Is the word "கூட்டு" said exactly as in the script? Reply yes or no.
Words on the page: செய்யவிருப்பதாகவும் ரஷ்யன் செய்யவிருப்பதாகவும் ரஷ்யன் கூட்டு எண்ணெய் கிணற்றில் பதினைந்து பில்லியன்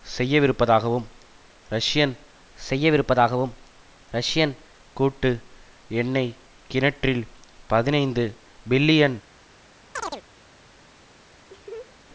yes